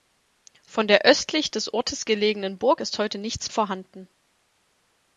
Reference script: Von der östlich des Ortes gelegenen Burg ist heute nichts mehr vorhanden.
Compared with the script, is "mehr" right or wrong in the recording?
wrong